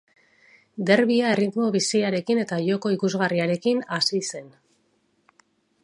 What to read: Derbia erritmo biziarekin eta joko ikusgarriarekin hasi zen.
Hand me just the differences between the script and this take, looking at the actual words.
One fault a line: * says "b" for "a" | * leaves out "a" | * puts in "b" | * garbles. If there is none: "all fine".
all fine